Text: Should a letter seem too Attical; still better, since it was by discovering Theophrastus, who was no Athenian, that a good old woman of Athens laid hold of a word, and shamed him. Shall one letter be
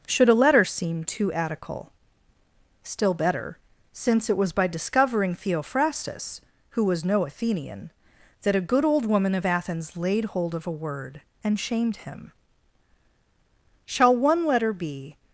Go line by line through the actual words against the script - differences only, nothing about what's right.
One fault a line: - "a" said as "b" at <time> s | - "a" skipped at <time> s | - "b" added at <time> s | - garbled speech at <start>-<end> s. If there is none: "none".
none